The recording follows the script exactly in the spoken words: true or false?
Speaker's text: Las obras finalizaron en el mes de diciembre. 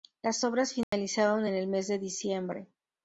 true